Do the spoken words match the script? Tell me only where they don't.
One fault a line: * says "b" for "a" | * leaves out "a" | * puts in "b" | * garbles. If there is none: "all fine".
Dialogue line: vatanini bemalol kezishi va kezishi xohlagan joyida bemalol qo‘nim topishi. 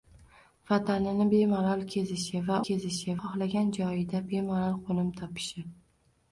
all fine